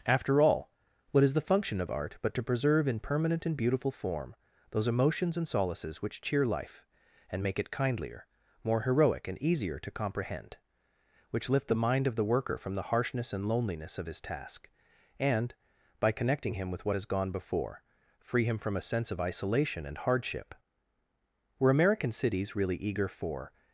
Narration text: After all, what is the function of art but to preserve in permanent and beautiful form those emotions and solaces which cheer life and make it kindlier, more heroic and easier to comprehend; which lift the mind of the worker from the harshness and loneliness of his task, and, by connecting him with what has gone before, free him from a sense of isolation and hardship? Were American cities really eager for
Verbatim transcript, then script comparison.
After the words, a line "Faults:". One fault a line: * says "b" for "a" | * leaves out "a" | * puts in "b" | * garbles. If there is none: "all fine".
After all, what is the function of art but to preserve in permanent and beautiful form those emotions and solaces which cheer life and make it kindlier, more heroic and easier to comprehend; which lift the mind of the worker from the harshness and loneliness of his task, and, by connecting him with what has gone before, free him from a sense of isolation and hardship? Were American cities really eager for
Faults:
all fine